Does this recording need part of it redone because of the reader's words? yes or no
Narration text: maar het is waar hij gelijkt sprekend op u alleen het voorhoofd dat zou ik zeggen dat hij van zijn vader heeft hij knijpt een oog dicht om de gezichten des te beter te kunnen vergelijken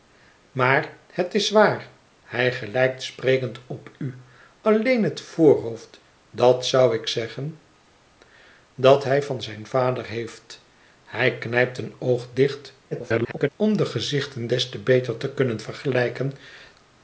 yes